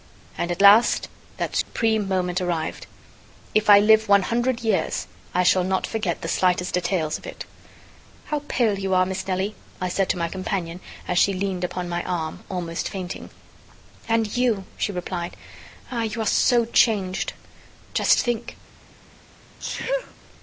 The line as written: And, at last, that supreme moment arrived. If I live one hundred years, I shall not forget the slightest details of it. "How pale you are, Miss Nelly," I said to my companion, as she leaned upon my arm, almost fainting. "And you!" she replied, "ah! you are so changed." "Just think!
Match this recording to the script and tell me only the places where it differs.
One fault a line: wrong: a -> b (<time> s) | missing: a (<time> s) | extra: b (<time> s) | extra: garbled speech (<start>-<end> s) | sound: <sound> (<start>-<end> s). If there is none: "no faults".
sound: dropout (1.6-1.7 s)
sound: sneeze (19.6-20.1 s)